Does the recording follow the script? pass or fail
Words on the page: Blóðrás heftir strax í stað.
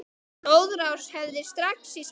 pass